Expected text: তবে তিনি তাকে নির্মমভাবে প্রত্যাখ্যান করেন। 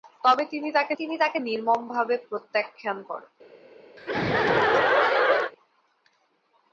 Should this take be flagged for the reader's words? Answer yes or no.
yes